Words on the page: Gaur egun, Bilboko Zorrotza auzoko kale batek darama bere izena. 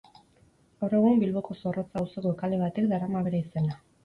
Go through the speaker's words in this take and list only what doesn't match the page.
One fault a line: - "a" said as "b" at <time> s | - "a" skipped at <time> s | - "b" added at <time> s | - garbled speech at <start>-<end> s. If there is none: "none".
none